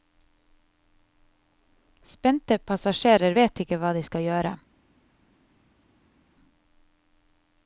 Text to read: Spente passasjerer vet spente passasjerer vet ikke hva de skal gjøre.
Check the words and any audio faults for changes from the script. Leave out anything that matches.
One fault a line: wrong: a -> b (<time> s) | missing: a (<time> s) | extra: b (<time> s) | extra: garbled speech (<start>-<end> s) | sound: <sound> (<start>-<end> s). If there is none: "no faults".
missing: spente passasjerer vet (3.6 s)